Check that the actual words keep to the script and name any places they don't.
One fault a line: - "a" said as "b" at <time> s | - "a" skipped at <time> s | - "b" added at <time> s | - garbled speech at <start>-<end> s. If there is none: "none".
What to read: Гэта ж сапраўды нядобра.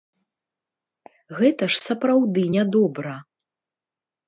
none